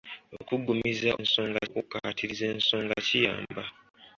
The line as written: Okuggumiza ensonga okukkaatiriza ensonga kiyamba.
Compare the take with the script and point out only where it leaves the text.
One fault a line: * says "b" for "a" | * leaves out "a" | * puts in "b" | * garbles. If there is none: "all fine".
all fine